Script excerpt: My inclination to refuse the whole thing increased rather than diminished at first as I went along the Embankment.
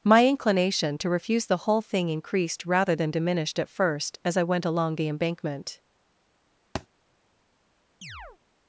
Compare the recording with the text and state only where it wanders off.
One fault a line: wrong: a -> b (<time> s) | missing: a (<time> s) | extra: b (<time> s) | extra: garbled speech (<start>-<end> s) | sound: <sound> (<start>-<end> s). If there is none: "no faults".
sound: thud (6.8-6.9 s)
sound: chirp (8.0-8.4 s)